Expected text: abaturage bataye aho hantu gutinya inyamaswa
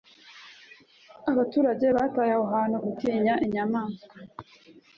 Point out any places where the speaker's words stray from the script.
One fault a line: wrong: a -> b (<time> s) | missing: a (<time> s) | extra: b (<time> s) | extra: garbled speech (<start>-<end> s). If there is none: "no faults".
no faults